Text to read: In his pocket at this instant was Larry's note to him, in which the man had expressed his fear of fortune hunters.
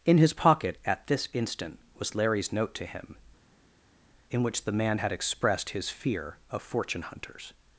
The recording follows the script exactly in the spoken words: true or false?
true